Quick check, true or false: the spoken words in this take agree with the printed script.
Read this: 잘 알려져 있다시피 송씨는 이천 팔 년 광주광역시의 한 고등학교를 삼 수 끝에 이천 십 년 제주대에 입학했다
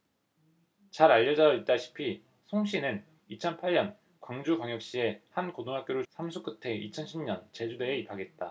true